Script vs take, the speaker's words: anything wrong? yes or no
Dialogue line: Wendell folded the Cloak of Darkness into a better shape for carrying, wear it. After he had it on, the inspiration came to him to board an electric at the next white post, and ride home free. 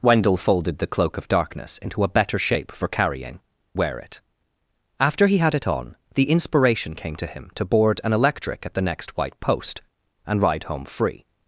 no